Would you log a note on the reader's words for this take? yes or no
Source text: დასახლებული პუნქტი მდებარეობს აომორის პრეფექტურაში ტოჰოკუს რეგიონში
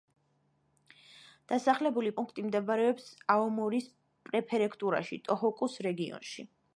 no